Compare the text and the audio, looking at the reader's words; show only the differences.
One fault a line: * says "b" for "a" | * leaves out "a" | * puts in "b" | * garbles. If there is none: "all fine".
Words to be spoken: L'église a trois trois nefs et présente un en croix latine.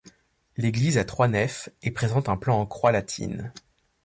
* leaves out "trois"
* puts in "plan"